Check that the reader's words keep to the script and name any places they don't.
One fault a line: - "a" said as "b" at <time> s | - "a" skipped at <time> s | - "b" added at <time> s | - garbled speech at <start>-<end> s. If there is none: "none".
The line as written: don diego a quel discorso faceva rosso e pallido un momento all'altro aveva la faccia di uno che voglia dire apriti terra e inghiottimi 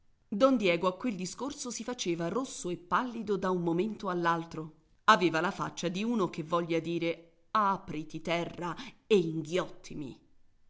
- "si" added at 1.7 s
- "da" added at 3.4 s